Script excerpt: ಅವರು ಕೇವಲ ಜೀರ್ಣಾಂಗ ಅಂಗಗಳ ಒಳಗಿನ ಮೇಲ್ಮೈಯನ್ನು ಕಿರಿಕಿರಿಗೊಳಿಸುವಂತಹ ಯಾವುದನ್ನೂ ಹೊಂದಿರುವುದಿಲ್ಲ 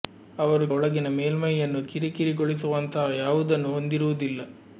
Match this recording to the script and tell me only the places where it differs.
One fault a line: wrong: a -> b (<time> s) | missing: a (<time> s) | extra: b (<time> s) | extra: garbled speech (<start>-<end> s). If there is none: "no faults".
missing: ಕೇವಲ ಜೀರ್ಣಾಂಗ ಅಂಗಗಳ (0.7 s)